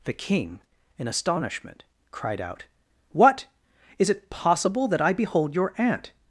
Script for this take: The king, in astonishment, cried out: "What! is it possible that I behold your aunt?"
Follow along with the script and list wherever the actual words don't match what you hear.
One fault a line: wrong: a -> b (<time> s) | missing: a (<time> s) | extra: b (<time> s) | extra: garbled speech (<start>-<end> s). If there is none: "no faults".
no faults